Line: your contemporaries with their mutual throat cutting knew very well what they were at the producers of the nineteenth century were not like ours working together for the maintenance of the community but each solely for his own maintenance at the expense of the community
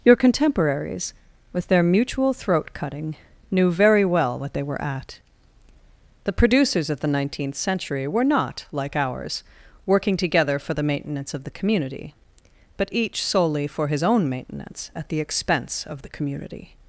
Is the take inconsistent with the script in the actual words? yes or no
no